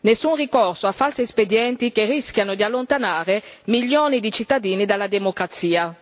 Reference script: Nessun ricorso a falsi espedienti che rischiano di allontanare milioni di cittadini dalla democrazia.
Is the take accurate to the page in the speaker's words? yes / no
yes